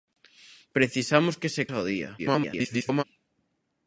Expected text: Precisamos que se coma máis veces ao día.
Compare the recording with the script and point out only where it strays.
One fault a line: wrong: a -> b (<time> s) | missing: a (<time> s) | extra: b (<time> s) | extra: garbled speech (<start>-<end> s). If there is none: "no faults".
missing: coma máis veces (1.6 s)
extra: garbled speech (2.2-3.0 s)